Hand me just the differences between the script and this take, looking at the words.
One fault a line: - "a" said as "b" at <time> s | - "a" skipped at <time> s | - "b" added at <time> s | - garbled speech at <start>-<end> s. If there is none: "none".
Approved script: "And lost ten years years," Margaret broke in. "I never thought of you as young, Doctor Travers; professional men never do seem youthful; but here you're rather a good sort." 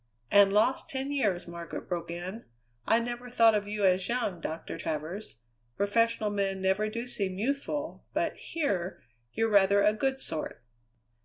- "years" skipped at 1.5 s